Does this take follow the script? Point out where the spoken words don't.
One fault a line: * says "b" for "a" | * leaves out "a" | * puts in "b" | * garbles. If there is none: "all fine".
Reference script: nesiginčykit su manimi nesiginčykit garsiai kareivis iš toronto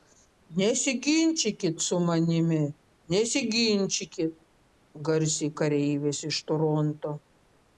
all fine